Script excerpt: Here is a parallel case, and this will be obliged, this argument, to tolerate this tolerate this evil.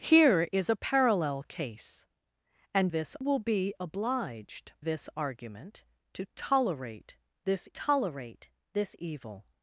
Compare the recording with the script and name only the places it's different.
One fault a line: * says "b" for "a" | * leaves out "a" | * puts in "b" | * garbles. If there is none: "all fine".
all fine